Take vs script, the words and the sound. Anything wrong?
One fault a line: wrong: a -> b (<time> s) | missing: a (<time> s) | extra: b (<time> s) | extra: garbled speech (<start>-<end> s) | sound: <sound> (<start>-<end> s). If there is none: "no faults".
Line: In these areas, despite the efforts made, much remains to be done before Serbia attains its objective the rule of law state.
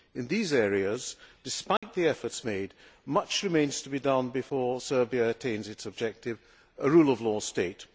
sound: dropout (1.8-1.8 s)
wrong: the -> a (6.8 s)